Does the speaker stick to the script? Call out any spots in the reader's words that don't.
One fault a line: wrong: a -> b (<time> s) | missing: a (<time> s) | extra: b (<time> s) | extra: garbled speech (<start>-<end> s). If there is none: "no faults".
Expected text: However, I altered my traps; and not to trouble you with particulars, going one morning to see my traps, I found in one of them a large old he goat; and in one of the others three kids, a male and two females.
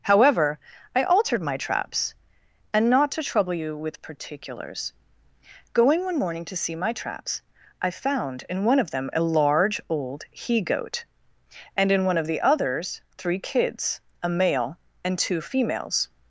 no faults